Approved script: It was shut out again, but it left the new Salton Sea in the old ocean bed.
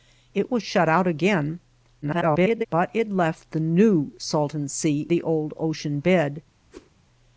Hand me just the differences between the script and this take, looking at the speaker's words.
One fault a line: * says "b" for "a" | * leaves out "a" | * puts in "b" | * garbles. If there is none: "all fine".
* garbles
* leaves out "in"